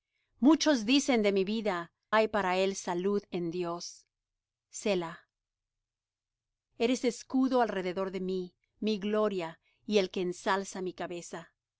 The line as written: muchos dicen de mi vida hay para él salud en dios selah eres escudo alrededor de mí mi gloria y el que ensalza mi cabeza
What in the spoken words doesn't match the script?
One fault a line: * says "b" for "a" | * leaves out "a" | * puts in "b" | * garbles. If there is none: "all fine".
all fine